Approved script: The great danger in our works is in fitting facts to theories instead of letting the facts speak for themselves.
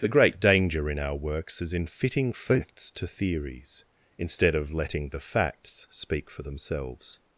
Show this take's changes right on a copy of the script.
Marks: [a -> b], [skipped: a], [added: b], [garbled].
The great danger in our works is in fitting facts to theories instead of letting the facts speak for themselves.